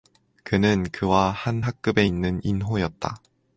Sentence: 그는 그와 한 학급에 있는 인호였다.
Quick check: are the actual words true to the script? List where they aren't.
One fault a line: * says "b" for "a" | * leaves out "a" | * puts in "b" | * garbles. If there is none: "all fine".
all fine